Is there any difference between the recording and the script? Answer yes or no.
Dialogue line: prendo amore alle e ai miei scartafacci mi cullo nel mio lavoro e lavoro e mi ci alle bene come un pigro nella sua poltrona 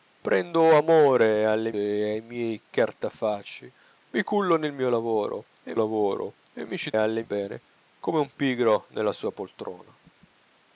no